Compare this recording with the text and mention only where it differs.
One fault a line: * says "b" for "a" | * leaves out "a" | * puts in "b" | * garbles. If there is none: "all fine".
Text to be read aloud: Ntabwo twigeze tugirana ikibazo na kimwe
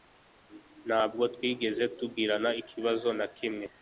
all fine